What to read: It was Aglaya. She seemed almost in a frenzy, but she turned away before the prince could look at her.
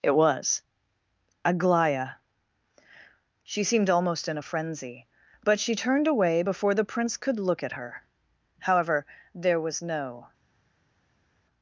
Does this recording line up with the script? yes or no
no